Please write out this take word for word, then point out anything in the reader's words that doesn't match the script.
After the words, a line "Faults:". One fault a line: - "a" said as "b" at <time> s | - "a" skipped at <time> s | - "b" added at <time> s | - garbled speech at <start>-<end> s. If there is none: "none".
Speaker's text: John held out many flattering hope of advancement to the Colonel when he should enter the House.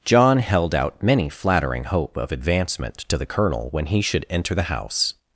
John held out many flattering hope of advancement to the Colonel when he should enter the House.
Faults:
none